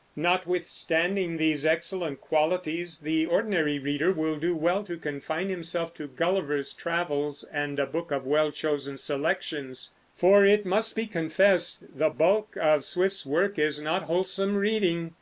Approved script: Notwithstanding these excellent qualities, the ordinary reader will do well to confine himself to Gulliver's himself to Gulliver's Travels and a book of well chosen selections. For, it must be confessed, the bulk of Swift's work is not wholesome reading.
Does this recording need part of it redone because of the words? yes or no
yes